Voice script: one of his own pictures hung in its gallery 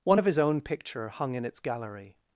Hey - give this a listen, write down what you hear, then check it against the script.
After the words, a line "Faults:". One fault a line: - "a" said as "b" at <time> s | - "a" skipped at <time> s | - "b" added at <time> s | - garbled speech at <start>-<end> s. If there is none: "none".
one of his own picture hung in its gallery
Faults:
- "pictures" said as "picture" at 0.6 s